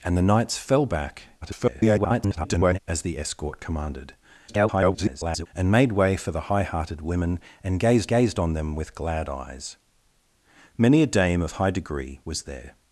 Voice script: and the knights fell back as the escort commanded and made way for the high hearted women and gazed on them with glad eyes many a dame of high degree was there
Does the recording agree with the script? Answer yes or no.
no